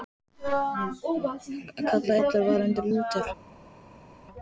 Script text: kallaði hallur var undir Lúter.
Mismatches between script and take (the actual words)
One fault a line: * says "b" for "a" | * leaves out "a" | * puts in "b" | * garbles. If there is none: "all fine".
all fine